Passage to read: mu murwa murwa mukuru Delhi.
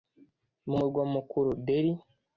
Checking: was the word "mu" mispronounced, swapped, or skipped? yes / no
no